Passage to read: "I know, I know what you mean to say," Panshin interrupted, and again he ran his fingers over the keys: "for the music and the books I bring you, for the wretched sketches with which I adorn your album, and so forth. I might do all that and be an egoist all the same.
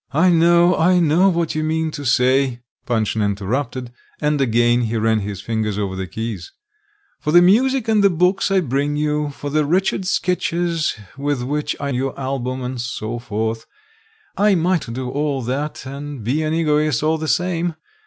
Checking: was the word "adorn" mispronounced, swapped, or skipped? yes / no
yes